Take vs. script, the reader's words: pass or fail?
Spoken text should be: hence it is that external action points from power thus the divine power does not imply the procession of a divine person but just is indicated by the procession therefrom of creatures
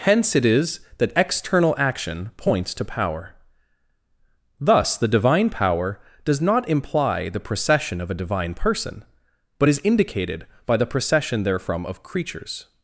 fail